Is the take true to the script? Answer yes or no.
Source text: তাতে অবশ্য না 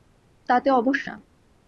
yes